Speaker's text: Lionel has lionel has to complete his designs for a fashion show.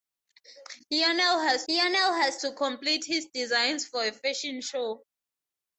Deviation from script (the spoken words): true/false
false